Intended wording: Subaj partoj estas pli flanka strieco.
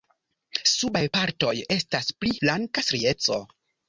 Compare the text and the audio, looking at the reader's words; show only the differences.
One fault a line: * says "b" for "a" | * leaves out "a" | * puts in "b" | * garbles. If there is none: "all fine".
all fine